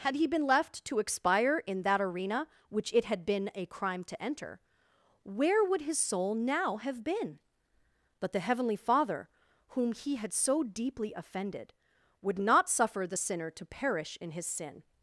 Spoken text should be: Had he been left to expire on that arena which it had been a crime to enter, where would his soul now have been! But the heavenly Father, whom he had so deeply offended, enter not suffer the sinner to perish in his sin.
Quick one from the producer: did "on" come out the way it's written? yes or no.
no